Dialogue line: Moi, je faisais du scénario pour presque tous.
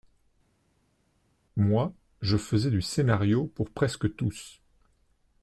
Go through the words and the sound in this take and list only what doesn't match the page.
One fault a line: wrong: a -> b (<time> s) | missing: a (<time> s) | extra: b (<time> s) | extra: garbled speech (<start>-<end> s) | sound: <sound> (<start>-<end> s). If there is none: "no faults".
no faults